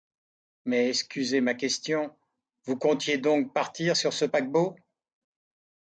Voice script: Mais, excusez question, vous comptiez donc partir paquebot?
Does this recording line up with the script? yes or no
no